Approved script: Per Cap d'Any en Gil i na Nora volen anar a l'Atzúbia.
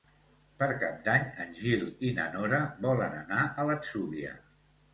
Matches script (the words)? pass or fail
pass